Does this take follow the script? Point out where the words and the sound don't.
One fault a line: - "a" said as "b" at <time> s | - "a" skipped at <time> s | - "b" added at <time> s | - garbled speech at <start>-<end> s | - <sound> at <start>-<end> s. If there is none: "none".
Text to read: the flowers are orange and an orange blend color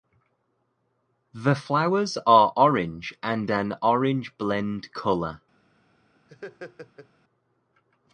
- laugh at 6.3-7.1 s